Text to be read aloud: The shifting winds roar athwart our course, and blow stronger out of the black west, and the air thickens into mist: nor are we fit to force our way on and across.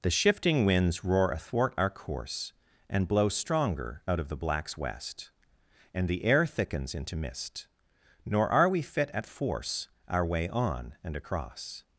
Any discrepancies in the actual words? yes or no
yes